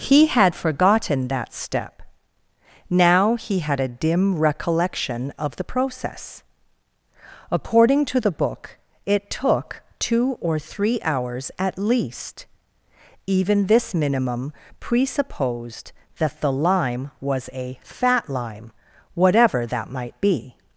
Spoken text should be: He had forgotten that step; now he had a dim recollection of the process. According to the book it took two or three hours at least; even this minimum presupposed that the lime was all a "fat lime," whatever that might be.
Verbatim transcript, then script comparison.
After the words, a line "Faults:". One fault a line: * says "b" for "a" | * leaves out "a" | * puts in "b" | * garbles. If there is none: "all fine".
He had forgotten that step; now he had a dim recollection of the process. According to the book it took two or three hours at least; even this minimum presupposed that the lime was a "fat lime," whatever that might be.
Faults:
* leaves out "all"